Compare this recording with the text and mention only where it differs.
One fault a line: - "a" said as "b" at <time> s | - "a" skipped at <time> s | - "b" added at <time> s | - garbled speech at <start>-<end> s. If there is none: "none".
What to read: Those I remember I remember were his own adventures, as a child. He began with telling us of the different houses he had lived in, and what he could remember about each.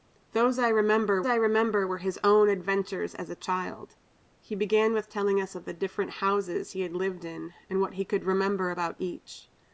none